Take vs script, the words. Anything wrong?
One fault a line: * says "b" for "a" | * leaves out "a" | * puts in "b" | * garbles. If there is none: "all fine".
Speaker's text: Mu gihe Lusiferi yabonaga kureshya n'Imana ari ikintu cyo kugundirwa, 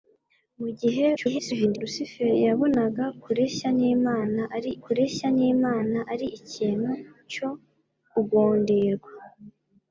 * garbles
* puts in "kureshya n'Imana ari"